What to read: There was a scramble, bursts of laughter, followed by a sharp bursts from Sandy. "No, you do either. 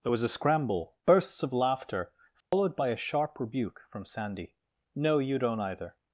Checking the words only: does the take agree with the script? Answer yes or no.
no